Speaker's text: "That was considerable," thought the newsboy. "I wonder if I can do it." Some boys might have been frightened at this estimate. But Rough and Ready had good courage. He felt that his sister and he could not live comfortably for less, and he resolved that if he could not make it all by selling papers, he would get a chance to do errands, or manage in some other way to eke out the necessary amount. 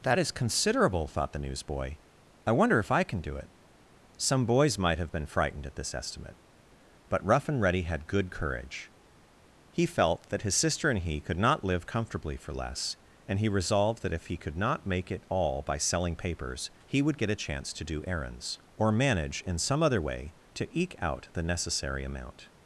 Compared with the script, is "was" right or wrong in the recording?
wrong